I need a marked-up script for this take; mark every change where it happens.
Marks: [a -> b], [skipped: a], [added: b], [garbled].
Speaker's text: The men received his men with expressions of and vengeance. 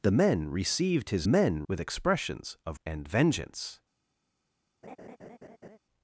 The men received his men with expressions of and vengeance.